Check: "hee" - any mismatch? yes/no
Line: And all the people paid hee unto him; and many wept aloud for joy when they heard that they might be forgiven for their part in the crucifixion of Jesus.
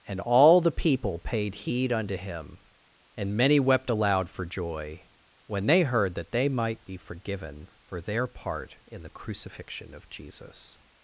yes